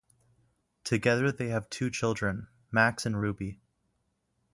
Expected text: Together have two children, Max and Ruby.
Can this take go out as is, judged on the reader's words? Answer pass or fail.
fail